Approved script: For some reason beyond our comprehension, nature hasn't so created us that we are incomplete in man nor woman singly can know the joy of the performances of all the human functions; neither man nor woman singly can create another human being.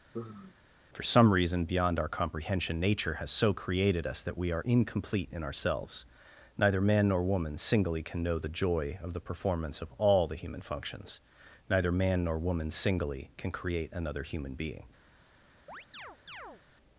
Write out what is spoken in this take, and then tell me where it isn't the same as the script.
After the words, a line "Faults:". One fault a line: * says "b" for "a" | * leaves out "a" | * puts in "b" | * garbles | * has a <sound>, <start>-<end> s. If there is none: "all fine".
For some reason beyond our comprehension, nature has so created us that we are incomplete in ourselves; neither man nor woman singly can know the joy of the performance of all the human functions; neither man nor woman singly can create another human being.
Faults:
* has a sigh, 0.1-0.6 s
* says "has" for "hasn't"
* puts in "ourselves neither"
* says "performance" for "performances"
* has a chirp, 15.7-16.6 s